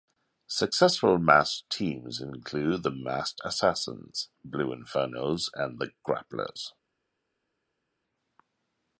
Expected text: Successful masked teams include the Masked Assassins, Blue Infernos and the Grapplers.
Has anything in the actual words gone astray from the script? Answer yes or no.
no